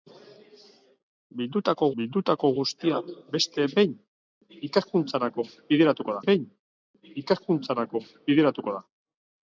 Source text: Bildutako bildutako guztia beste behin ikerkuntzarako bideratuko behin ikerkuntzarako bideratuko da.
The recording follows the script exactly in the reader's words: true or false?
true